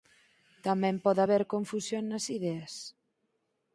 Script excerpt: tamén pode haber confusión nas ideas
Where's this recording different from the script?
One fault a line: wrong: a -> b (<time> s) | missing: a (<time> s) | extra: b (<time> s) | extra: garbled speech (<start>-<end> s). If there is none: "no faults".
no faults